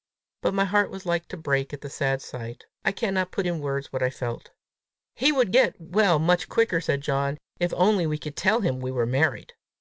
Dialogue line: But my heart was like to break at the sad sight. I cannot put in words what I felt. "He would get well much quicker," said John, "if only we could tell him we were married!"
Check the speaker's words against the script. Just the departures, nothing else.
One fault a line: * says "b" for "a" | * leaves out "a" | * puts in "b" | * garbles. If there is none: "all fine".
all fine